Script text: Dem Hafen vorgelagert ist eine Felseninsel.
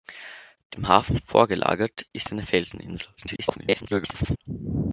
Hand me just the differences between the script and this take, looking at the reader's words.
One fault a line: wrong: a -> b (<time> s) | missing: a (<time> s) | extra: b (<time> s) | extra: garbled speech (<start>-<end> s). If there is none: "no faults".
extra: garbled speech (3.2-4.4 s)